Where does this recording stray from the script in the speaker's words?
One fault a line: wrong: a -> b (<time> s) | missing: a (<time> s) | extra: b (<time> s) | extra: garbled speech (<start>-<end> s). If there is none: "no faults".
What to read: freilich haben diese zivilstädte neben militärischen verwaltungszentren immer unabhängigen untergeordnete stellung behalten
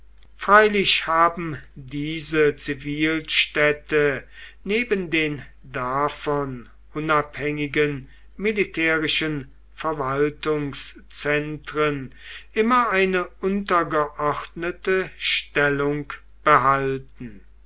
extra: den davon unabhängigen (5.1 s)
wrong: unabhängigen -> eine (12.9 s)